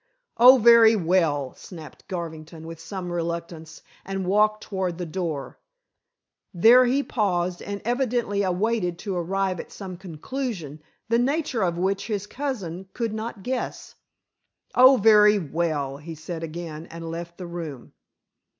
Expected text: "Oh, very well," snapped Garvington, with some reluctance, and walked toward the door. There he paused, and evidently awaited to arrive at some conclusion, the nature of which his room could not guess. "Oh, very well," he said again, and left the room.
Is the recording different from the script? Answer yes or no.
yes